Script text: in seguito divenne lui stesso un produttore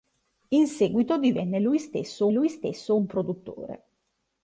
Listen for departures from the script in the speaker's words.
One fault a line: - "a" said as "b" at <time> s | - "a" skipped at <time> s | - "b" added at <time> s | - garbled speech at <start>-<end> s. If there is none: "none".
- "lui stesso" added at 2.3 s